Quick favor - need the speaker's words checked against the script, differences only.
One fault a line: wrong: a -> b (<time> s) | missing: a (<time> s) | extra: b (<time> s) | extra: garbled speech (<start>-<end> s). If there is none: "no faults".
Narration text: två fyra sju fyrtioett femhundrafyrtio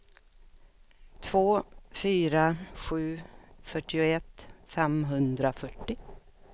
no faults